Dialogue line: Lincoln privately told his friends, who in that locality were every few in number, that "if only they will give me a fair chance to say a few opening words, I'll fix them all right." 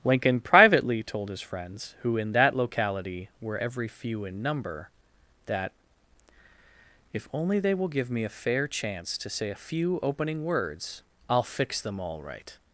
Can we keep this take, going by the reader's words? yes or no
yes